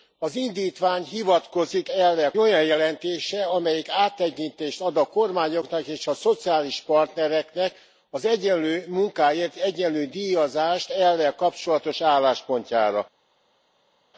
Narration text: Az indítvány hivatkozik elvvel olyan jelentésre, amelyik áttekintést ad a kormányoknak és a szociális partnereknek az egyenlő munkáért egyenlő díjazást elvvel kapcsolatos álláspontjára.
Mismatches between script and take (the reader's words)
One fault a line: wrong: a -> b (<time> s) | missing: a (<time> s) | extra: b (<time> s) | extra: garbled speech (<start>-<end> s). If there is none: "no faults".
no faults